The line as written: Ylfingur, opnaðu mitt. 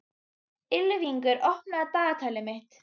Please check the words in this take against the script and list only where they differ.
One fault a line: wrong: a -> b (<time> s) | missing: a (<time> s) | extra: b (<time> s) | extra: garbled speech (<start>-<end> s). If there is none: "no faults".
extra: dagatalið (2.0 s)